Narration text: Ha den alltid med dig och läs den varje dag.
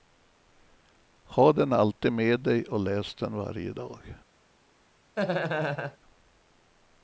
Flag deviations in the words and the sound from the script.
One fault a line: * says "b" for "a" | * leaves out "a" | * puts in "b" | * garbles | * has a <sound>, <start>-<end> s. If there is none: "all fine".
* has a laugh, 5.2-6.0 s